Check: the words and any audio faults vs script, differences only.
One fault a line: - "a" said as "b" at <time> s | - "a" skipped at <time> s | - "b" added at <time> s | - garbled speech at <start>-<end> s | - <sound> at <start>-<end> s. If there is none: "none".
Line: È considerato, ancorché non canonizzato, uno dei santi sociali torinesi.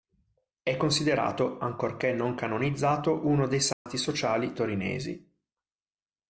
- dropout at 3.7-3.9 s